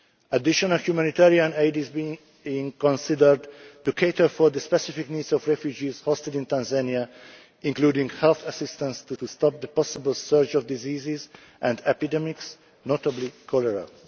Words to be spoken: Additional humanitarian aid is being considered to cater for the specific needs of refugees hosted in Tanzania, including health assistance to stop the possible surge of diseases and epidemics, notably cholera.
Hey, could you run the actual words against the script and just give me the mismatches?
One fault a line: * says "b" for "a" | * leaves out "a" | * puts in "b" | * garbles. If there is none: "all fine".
* puts in "to"